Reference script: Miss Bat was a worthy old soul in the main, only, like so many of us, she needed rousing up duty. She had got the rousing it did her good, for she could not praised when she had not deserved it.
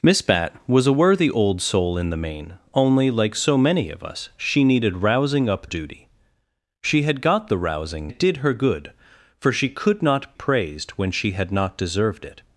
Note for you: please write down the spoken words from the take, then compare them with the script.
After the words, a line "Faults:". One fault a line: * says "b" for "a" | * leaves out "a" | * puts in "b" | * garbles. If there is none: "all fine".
Miss Bat was a worthy old soul in the main, only, like so many of us, she needed rousing up duty. She had got the rousing it did her good, for she could not praised when she had not deserved it.
Faults:
all fine